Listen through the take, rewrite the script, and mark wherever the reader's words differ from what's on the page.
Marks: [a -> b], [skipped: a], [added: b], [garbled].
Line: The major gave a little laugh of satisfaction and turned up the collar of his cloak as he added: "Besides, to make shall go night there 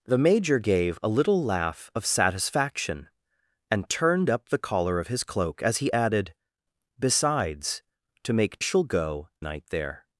The major gave a little laugh of satisfaction and turned up the collar of his cloak as he added: "Besides, to make shall go night there